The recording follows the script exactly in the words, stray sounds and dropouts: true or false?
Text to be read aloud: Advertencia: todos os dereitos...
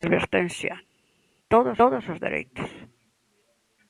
false